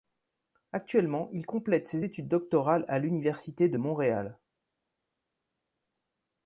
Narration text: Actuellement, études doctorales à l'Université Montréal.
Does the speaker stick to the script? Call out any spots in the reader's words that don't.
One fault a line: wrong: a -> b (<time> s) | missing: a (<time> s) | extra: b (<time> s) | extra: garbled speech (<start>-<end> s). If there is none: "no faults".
extra: il complète ses (1.3 s)
extra: de (3.7 s)